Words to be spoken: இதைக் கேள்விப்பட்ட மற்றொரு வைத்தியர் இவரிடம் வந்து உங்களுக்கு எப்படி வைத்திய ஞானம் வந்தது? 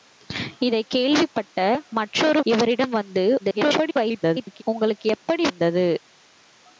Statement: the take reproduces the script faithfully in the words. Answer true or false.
false